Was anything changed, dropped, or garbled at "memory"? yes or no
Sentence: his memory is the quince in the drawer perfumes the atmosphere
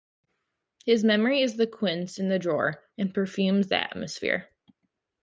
no